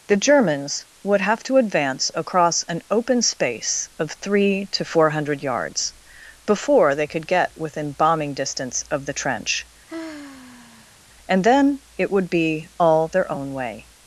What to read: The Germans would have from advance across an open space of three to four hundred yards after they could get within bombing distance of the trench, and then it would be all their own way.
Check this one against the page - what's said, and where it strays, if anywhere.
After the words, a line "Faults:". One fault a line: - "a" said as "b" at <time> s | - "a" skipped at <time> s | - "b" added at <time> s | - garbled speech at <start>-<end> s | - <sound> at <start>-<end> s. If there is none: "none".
The Germans would have to advance across an open space of three to four hundred yards before they could get within bombing distance of the trench, and then it would be all their own way.
Faults:
- "from" said as "to" at 1.4 s
- "after" said as "before" at 6.5 s
- sigh at 9.9-11.0 s